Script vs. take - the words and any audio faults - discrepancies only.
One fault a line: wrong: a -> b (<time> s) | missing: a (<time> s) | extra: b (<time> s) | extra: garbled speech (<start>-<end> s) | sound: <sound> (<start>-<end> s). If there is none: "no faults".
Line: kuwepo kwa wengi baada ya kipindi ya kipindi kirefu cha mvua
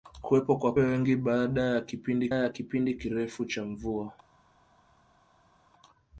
no faults